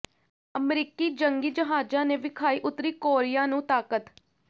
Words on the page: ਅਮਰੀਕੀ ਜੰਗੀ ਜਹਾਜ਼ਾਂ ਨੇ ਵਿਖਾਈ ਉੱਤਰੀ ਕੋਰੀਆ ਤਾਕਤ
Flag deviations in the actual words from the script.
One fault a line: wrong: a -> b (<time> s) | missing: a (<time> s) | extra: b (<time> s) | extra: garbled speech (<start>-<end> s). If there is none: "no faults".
extra: ਨੂੰ (3.5 s)